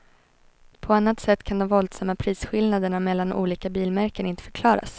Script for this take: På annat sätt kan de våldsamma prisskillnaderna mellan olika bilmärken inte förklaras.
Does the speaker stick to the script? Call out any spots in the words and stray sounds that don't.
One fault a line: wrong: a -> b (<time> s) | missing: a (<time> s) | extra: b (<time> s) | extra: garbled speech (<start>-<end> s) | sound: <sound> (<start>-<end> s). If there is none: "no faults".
no faults